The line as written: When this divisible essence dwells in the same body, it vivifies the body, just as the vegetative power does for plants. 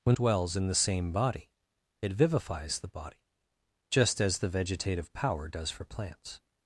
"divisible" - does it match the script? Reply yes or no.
no